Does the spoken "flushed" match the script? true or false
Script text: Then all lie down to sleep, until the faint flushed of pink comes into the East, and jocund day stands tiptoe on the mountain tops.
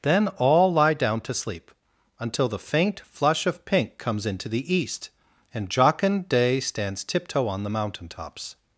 false